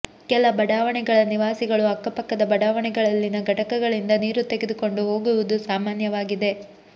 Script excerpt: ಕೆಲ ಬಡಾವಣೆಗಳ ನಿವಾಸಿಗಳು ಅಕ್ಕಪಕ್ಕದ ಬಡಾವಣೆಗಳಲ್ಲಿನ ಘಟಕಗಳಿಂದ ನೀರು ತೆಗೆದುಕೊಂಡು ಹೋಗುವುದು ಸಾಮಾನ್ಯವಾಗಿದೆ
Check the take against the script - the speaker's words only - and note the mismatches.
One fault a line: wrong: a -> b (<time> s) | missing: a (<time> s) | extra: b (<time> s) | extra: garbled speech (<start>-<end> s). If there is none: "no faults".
no faults